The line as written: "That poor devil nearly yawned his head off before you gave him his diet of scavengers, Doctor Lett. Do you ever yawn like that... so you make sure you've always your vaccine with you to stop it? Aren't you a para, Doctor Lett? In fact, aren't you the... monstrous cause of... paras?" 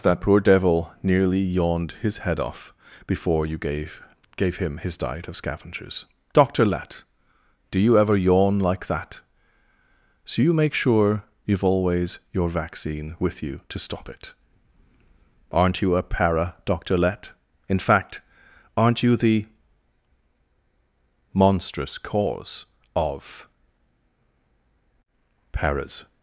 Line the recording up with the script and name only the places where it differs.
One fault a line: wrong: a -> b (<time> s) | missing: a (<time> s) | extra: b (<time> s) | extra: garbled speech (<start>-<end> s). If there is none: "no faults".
extra: gave (4.3 s)